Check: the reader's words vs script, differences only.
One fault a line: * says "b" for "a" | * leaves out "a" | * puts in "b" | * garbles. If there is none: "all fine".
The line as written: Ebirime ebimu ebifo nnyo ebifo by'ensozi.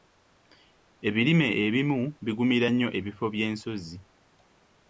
* says "bigumira" for "ebifo"